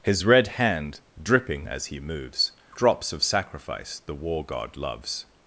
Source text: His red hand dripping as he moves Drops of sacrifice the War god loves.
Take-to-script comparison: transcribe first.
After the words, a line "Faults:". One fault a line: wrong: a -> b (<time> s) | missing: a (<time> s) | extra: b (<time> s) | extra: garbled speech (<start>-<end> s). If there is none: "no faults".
His red hand dripping as he moves Drops of sacrifice the War god loves.
Faults:
no faults